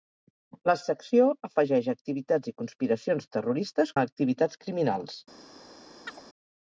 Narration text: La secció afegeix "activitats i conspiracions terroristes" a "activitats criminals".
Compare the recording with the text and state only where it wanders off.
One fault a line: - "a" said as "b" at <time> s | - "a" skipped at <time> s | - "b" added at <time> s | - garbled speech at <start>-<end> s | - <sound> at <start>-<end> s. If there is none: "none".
- chirp at 6.1-6.2 s